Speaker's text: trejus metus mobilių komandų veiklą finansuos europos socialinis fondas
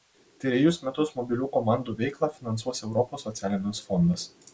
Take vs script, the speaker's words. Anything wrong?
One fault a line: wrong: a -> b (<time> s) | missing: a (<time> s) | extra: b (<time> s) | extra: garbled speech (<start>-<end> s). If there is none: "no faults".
no faults